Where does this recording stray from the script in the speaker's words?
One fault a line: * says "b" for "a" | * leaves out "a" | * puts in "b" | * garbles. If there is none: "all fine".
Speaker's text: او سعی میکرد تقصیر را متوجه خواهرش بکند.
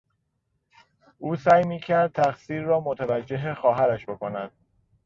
all fine